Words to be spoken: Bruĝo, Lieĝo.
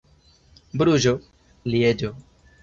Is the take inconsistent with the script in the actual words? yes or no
no